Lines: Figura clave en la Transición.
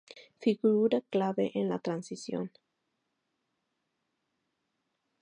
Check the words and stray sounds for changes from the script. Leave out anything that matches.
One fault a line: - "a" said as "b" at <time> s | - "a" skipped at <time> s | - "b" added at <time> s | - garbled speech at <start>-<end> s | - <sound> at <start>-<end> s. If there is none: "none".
none